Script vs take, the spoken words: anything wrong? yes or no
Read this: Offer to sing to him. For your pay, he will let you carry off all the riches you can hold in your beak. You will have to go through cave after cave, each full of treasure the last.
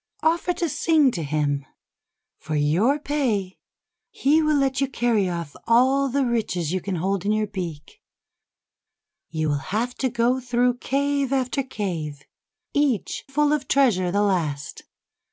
no